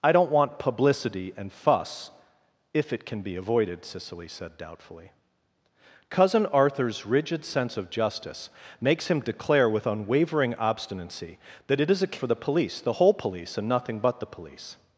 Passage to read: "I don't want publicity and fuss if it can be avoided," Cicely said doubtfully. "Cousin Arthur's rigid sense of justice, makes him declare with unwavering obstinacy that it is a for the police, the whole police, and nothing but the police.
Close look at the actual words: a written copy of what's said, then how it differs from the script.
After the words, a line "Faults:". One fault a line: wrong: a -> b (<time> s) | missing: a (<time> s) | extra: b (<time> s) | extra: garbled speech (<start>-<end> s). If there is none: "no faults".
"I don't want publicity and fuss if it can be avoided," Cicely said doubtfully. "Cousin Arthur's rigid sense of justice, makes him declare with unwavering obstinacy that it is a for the police, the whole police, and nothing but the police.
Faults:
no faults